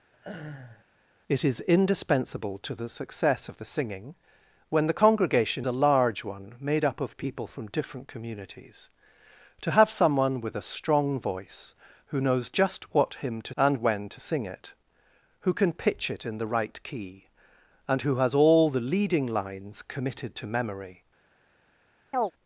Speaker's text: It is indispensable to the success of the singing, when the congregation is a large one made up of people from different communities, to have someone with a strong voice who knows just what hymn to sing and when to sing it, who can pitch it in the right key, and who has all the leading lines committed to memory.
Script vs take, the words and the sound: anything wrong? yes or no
yes